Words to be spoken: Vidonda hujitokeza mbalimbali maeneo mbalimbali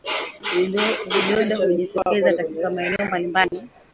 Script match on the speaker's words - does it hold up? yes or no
no